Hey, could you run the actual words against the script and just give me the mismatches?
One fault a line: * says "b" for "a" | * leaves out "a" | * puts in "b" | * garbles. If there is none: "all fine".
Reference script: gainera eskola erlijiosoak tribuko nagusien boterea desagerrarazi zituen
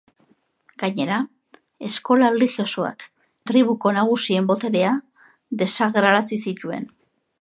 all fine